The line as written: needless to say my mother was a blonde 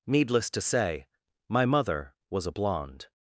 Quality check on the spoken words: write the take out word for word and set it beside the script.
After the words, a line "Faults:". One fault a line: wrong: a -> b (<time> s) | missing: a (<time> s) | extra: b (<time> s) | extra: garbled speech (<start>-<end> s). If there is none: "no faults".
needless to say my mother was a blonde
Faults:
no faults